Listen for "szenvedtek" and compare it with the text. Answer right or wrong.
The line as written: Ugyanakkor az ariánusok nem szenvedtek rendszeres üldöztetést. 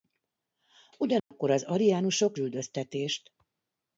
wrong